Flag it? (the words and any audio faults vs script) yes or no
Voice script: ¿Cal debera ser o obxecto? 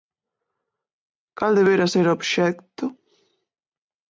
no